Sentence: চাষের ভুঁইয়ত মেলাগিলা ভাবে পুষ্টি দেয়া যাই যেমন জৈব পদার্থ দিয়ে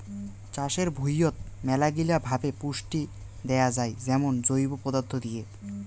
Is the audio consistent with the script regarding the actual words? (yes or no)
yes